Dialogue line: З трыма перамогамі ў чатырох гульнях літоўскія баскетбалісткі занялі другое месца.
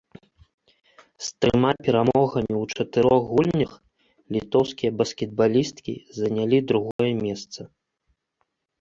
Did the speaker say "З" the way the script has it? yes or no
yes